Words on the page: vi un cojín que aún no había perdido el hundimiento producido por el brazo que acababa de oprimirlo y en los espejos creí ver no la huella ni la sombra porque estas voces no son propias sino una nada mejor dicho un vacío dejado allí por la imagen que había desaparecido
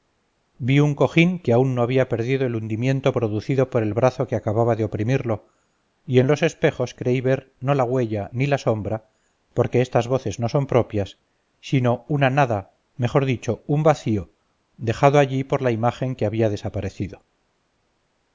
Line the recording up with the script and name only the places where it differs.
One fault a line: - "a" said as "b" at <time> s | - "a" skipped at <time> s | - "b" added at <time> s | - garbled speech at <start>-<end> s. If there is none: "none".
none